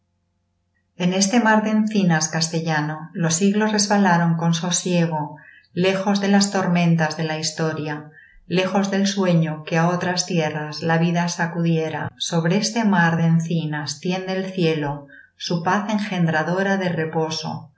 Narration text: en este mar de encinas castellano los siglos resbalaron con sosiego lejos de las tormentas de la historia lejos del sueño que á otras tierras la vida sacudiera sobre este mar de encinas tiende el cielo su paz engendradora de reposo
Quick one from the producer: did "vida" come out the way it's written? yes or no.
yes